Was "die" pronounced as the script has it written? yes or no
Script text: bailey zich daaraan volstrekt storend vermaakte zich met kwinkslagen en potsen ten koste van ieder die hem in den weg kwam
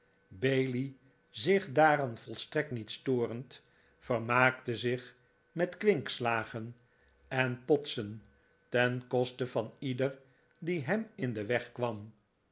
yes